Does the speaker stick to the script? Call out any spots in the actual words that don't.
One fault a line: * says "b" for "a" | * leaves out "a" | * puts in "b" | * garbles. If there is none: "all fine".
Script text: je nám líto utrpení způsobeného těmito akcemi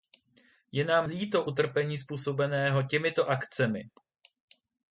all fine